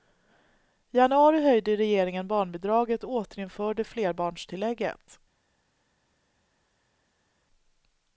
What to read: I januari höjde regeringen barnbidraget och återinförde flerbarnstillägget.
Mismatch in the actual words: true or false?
false